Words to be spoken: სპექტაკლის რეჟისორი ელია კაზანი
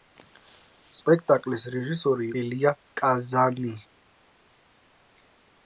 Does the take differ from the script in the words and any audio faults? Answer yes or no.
no